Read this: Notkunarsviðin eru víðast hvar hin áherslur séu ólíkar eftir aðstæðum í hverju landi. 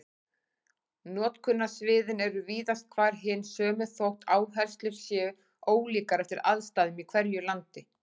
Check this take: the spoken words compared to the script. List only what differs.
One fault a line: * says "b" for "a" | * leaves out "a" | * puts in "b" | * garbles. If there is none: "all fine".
* puts in "sömu þótt"